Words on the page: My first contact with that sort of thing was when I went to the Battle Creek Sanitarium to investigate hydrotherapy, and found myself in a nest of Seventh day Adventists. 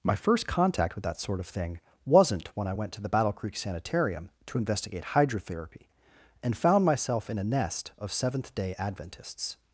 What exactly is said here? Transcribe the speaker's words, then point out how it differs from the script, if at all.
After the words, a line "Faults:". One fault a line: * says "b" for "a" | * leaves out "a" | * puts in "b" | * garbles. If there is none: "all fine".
My first contact with that sort of thing wasn't when I went to the Battle Creek Sanitarium to investigate hydrotherapy, and found myself in a nest of Seventh day Adventists.
Faults:
* says "wasn't" for "was"